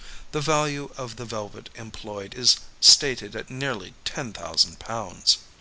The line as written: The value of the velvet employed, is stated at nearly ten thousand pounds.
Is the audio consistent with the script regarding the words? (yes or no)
yes